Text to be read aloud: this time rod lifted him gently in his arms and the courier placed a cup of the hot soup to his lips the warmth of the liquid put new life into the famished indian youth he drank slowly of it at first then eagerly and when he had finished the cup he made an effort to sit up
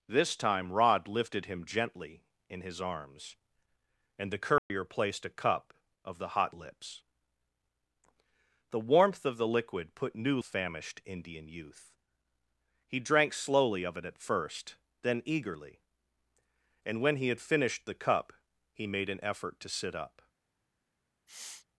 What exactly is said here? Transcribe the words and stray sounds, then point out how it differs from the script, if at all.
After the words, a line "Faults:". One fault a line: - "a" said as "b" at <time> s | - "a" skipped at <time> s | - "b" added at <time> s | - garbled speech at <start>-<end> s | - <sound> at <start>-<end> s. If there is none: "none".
this time rod lifted him gently in his arms and the courier placed a cup of the hot lips the warmth of the liquid put new famished indian youth he drank slowly of it at first then eagerly and when he had finished the cup he made an effort to sit up
Faults:
- dropout at 4.6-4.7 s
- "soup to his" skipped at 6.5 s
- "life into the" skipped at 10.4 s
- sniff at 21.3-21.7 s